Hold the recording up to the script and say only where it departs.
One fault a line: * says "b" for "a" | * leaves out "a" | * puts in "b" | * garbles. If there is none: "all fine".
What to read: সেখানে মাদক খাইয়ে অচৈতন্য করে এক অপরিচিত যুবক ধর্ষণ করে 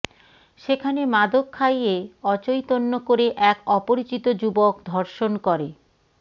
all fine